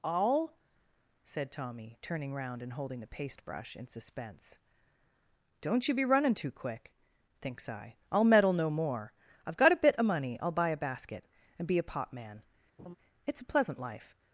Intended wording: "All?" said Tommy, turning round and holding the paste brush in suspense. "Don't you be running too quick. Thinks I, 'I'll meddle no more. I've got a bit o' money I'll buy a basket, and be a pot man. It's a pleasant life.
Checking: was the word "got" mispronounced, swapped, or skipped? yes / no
no